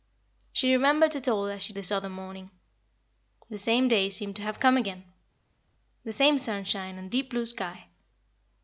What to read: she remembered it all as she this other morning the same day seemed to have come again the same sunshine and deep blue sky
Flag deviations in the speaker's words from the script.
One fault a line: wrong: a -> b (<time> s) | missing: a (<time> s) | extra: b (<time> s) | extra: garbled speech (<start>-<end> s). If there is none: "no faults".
no faults